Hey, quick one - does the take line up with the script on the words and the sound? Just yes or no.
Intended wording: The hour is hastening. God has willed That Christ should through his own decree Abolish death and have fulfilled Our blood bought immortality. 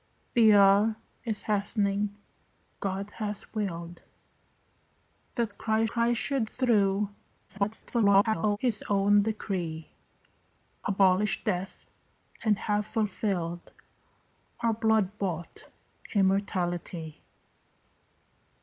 no